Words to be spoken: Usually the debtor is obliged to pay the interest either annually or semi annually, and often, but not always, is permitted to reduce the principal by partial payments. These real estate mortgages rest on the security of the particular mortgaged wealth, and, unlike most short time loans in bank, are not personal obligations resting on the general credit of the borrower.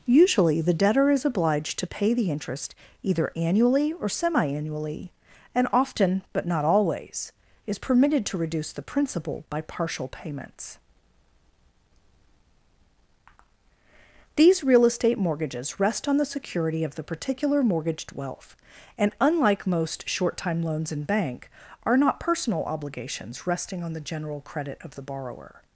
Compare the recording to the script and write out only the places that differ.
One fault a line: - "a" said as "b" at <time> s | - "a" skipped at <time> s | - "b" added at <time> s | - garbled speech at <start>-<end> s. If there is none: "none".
none